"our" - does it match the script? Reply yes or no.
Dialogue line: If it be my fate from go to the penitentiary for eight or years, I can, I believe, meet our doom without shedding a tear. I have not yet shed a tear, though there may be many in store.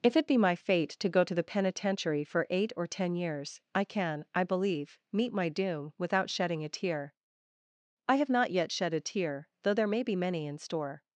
no